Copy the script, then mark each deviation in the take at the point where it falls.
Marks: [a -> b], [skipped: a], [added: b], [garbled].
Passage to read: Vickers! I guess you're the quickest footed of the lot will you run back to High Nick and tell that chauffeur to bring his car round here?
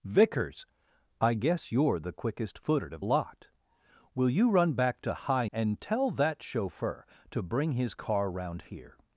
Vickers! I guess you're the quickest footed of [skipped: the] lot will you run back to High [skipped: Nick] and tell that chauffeur to bring his car round here?